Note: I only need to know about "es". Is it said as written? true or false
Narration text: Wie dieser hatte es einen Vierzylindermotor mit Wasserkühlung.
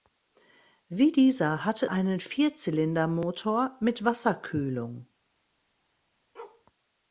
false